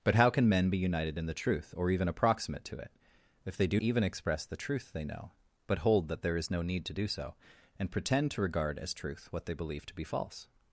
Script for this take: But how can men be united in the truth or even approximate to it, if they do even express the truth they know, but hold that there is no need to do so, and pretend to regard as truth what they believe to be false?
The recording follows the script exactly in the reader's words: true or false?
true